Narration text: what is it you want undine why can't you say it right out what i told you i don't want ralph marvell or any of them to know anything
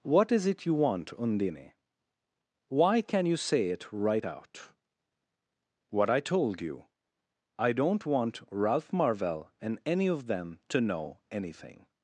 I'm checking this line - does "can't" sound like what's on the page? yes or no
no